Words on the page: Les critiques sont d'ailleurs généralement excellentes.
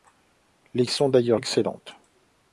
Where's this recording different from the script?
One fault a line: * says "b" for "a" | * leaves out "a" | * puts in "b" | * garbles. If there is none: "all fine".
* leaves out "critiques"
* leaves out "généralement"